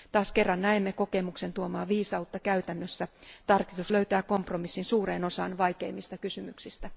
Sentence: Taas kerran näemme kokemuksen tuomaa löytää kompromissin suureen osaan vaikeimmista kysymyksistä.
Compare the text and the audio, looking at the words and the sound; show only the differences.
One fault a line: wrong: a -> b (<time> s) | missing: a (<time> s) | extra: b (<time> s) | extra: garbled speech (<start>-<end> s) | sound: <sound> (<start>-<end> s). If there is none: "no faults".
extra: viisautta käytännössä Tarkistus (1.9 s)